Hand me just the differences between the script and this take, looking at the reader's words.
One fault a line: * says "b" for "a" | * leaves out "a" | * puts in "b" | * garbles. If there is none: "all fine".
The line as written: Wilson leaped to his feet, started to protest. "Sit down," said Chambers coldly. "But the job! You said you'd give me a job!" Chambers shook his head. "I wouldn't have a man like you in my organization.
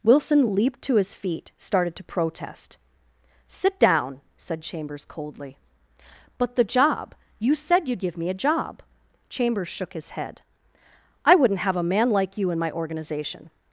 all fine